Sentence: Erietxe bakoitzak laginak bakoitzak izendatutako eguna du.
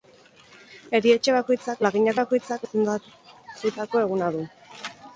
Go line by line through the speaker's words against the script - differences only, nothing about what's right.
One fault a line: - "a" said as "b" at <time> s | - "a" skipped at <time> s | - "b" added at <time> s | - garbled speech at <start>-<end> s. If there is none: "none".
none